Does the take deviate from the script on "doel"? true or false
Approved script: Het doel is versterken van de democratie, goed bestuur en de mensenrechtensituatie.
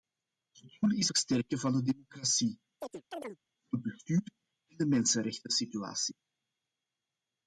false